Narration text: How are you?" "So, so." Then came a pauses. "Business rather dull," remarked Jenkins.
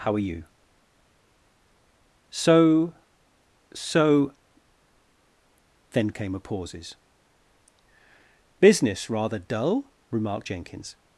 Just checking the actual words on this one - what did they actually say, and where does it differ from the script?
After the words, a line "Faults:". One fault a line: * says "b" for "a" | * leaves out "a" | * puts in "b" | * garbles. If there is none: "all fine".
How are you?" "So, so." Then came a pauses. "Business rather dull," remarked Jenkins.
Faults:
all fine